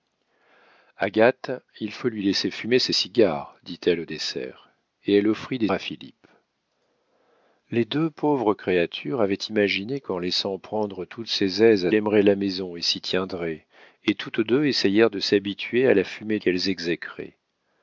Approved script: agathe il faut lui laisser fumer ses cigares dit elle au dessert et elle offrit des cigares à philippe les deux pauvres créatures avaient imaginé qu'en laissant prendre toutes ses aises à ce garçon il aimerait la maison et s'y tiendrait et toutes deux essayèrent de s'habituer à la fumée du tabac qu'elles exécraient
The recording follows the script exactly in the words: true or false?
false